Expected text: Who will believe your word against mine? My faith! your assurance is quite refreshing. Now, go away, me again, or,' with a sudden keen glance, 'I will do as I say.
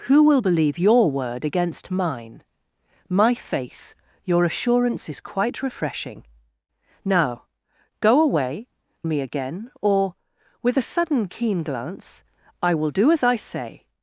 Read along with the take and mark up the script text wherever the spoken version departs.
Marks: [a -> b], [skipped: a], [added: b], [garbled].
Who will believe your word against mine? My faith! your assurance is quite refreshing. Now, go away, me again, or,' with a sudden keen glance, 'I will do as I say.